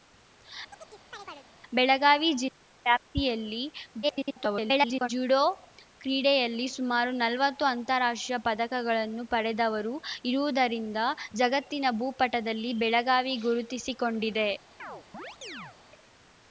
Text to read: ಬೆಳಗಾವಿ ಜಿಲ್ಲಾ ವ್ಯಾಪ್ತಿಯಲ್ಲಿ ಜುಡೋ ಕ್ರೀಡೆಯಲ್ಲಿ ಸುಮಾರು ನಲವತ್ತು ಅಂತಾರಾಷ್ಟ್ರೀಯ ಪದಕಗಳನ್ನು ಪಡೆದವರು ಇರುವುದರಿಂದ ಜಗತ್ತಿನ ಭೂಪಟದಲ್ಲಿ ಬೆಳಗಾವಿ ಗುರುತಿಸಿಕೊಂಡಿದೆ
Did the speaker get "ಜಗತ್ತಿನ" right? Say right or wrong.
right